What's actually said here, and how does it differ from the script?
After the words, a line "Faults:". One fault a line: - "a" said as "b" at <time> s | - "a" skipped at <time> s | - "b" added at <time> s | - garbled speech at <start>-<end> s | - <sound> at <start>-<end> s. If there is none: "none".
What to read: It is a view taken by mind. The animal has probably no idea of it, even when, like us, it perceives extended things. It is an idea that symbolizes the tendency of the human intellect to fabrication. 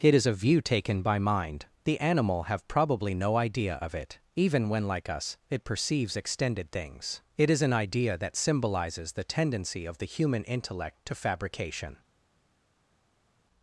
It is a view taken by mind. The animal have probably no idea of it, even when, like us, it perceives extended things. It is an idea that symbolizes the tendency of the human intellect to fabrication.
Faults:
- "has" said as "have" at 2.4 s